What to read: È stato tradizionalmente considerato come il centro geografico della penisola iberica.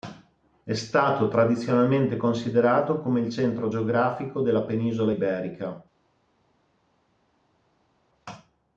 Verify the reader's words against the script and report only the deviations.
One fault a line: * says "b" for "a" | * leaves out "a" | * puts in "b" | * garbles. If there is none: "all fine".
all fine